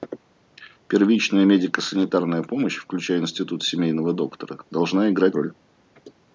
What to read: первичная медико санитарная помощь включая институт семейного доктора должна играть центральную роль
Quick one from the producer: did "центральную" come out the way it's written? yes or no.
no